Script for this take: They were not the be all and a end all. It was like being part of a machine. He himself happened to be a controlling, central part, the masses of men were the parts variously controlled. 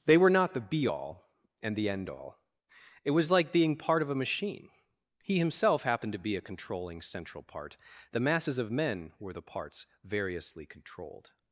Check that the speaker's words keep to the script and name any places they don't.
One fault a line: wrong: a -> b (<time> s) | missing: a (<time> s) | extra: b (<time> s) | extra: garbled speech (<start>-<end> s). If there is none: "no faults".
wrong: a -> the (1.8 s)